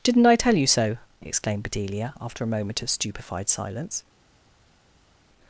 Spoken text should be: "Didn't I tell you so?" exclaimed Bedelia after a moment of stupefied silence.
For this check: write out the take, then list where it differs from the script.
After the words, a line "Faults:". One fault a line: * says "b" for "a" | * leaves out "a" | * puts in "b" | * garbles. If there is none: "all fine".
"Didn't I tell you so?" exclaimed Bedelia after a moment of stupefied silence.
Faults:
all fine